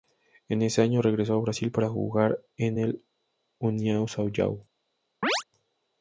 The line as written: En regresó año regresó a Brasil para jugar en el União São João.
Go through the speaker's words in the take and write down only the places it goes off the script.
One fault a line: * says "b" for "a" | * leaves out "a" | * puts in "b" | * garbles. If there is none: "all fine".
* says "ese" for "regresó"